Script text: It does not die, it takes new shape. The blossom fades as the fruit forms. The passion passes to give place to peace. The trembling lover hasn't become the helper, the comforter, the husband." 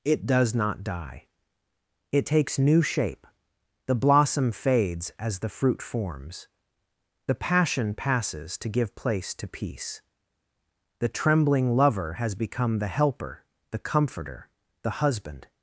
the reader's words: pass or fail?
fail